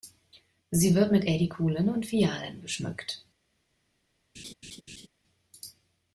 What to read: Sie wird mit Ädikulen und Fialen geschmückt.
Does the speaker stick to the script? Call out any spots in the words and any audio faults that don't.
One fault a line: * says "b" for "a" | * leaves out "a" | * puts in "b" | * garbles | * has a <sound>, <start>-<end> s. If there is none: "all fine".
* has a laugh, 4.3-5.1 s